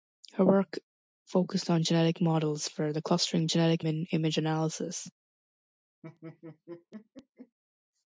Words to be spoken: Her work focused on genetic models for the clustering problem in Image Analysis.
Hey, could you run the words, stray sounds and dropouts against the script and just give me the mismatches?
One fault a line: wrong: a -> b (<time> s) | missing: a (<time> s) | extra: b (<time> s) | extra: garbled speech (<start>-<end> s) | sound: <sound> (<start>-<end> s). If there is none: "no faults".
wrong: problem -> genetic (3.5 s)
sound: laugh (6.0-7.6 s)